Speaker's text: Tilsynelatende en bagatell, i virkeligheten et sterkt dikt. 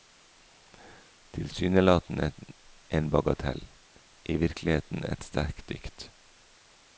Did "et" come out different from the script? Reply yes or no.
no